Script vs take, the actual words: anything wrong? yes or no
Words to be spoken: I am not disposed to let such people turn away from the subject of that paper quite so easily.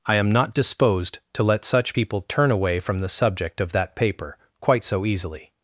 no